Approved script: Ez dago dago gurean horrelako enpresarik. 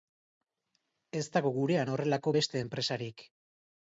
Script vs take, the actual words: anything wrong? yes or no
yes